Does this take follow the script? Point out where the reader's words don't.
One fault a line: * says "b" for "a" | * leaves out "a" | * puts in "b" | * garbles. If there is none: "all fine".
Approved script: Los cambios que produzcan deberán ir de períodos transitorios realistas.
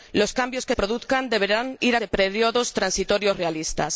all fine